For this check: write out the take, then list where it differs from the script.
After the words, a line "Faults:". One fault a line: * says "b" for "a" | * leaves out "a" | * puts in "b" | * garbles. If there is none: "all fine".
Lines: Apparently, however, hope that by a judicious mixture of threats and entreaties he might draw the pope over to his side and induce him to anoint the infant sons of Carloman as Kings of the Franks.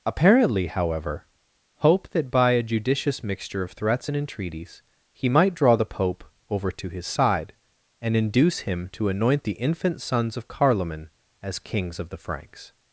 Apparently, however, hope that by a judicious mixture of threats and entreaties he might draw the pope over to his side and induce him to anoint the infant sons of Carloman as Kings of the Franks.
Faults:
all fine